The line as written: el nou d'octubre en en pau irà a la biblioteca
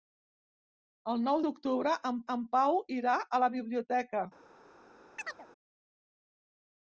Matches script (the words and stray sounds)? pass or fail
fail